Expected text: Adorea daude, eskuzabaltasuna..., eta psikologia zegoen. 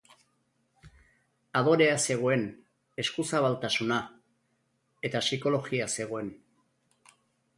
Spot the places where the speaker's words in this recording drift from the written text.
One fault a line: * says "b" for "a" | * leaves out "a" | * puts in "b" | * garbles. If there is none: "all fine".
* says "zegoen" for "daude"